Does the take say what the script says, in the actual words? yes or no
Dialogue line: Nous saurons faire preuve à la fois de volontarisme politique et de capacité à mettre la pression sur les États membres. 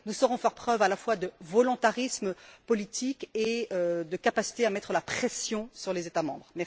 yes